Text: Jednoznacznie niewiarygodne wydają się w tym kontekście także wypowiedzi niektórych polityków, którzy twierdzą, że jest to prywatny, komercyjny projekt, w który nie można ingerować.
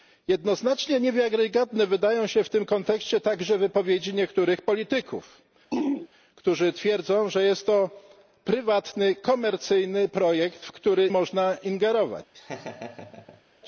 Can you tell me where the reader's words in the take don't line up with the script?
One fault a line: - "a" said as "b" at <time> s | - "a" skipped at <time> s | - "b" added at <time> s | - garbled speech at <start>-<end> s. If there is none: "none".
- "nie" skipped at 11.1 s